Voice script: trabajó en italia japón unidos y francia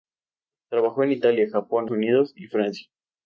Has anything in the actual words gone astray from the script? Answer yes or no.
no